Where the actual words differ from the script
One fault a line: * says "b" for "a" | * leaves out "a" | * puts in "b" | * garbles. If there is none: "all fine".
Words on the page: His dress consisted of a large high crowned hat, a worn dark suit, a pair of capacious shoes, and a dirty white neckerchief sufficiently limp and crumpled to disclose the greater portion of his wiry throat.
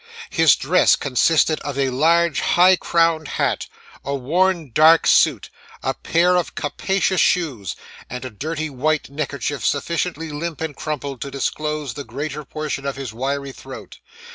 all fine